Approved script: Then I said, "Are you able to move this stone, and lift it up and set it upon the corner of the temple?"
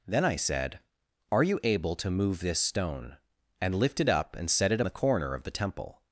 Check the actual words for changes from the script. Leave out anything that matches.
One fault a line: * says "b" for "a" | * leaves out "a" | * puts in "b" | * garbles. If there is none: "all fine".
* leaves out "upon"